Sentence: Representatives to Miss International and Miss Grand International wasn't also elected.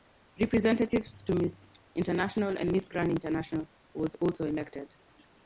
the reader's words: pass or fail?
fail